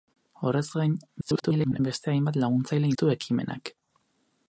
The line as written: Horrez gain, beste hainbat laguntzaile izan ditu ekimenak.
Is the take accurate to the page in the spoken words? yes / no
no